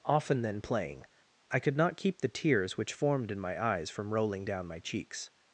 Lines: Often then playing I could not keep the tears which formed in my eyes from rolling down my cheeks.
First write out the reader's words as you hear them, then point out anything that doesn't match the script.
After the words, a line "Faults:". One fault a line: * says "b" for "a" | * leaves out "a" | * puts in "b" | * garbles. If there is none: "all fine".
Often then playing I could not keep the tears which formed in my eyes from rolling down my cheeks.
Faults:
all fine